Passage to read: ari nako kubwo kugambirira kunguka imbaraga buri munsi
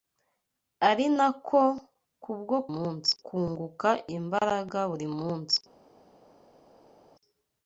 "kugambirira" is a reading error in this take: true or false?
true